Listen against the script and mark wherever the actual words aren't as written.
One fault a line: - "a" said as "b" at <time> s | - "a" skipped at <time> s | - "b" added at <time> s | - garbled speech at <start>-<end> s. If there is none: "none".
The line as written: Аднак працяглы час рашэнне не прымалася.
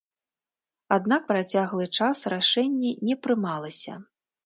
none